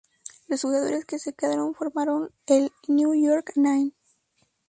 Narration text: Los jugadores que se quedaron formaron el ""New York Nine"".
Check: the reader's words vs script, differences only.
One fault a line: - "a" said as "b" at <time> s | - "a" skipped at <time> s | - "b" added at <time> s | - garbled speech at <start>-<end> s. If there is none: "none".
none